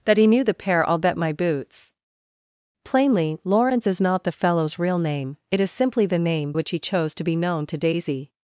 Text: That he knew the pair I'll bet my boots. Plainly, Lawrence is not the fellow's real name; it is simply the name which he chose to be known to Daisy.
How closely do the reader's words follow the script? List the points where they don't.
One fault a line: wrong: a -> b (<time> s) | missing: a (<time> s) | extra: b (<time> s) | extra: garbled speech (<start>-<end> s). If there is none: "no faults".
no faults